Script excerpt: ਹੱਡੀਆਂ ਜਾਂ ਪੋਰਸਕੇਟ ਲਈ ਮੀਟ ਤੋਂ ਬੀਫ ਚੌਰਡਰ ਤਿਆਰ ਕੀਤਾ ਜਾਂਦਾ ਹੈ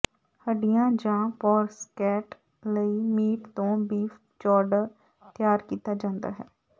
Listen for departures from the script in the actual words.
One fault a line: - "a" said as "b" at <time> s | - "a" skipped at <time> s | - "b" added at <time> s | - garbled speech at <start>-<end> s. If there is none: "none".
none